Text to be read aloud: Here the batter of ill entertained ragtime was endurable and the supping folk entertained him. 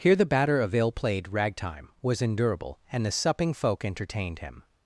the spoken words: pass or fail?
fail